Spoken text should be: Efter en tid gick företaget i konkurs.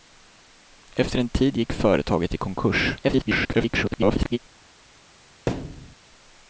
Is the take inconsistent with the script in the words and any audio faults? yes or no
yes